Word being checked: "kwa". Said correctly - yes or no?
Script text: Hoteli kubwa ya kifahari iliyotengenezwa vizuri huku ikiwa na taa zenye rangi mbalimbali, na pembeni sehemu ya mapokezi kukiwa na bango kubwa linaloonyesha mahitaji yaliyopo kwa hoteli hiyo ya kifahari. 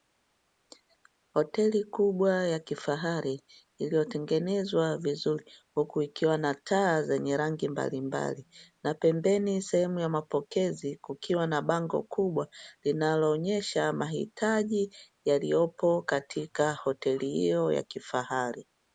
no